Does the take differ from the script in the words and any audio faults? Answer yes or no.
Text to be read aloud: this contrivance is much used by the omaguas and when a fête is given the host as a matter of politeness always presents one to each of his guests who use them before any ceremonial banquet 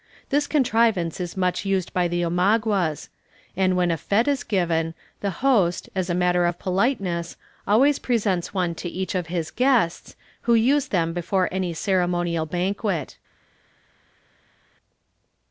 no